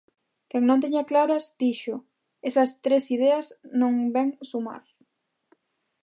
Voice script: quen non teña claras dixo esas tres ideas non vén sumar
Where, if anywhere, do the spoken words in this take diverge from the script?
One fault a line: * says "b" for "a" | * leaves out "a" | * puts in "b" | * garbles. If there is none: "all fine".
all fine